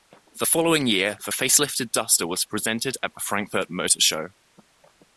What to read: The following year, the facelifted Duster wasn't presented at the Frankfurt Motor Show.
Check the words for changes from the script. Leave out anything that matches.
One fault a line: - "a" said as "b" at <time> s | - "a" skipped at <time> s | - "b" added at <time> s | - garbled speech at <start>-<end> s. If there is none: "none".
- "wasn't" said as "was" at 2.3 s